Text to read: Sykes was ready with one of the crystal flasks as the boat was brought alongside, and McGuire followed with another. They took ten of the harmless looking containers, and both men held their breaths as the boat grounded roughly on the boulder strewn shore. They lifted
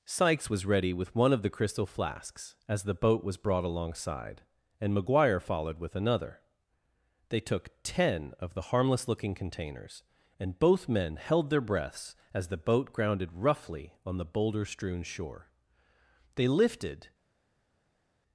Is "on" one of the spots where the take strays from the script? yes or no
no